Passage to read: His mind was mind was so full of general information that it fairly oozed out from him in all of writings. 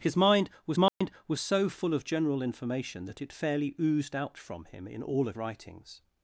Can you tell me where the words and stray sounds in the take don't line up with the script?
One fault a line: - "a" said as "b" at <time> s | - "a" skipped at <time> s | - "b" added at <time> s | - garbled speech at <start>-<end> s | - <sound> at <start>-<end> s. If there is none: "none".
- dropout at 0.9-1.0 s